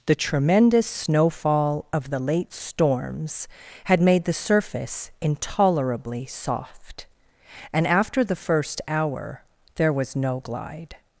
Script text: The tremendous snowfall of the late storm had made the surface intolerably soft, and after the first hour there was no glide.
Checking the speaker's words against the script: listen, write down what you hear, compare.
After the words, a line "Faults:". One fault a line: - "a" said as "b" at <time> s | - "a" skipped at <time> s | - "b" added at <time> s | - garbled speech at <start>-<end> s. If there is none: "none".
The tremendous snowfall of the late storms had made the surface intolerably soft, and after the first hour there was no glide.
Faults:
- "storm" said as "storms" at 2.5 s